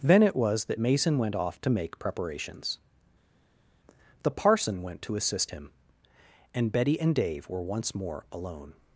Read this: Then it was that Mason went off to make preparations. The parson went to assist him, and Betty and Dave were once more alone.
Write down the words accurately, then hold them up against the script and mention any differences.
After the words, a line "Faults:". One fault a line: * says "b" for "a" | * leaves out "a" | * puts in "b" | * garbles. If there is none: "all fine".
Then it was that Mason went off to make preparations. The parson went to assist him, and Betty and Dave were once more alone.
Faults:
all fine